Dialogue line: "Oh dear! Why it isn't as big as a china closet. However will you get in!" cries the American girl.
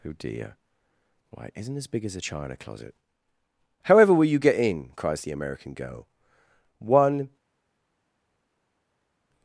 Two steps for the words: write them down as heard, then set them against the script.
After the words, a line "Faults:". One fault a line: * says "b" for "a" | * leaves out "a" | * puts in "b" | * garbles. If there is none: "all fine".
"Oh dear! Why it isn't as big as a china closet. However will you get in!" cries the American girl. "One
Faults:
* puts in "One"